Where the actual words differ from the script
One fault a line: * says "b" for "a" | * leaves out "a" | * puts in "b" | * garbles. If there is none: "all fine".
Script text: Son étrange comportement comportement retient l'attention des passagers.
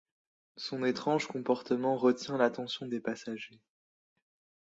* leaves out "comportement"